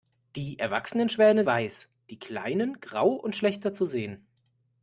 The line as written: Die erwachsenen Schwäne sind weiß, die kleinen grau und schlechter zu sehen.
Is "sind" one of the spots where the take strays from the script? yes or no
yes